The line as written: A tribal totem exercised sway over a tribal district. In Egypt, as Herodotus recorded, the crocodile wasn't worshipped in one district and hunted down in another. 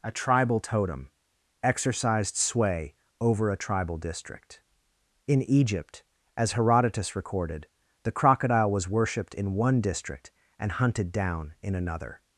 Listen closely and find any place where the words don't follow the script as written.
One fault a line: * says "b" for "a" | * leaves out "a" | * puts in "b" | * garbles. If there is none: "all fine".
* says "was" for "wasn't"